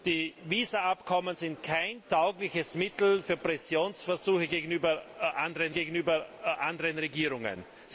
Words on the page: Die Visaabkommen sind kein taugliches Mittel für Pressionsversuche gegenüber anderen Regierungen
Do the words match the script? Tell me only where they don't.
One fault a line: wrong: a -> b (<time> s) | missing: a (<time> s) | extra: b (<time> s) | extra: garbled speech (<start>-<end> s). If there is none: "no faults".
extra: gegenüber anderen (5.7 s)